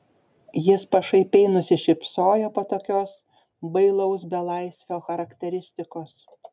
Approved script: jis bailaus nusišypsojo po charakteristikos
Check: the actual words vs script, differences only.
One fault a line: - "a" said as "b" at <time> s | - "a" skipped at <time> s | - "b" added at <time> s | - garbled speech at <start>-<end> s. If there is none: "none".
- "bailaus" said as "pašaipiai" at 0.9 s
- "tokios bailaus belaisvio" added at 2.7 s